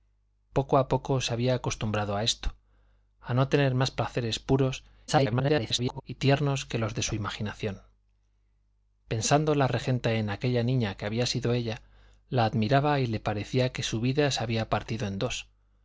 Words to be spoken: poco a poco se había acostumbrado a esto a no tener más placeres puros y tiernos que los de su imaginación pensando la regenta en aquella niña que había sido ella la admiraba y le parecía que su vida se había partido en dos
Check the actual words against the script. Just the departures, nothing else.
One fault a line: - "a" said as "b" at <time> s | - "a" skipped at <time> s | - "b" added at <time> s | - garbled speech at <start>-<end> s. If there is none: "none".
- garbled speech at 5.1-6.0 s